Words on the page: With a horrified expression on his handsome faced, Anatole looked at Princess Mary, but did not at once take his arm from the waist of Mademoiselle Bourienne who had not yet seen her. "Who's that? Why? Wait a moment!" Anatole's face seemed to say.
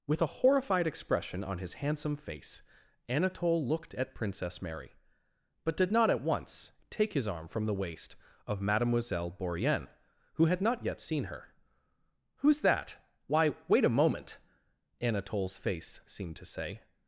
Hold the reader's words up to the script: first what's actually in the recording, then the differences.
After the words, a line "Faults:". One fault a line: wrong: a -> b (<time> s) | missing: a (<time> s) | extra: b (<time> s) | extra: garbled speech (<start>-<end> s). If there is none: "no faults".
With a horrified expression on his handsome face, Anatole looked at Princess Mary, but did not at once take his arm from the waist of Mademoiselle Bourienne who had not yet seen her. "Who's that? Why? Wait a moment!" Anatole's face seemed to say.
Faults:
wrong: faced -> face (2.1 s)